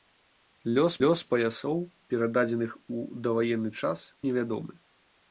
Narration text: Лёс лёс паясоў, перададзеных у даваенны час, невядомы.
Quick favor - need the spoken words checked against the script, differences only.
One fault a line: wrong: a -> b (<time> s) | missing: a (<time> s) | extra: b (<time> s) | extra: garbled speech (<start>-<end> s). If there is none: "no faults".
no faults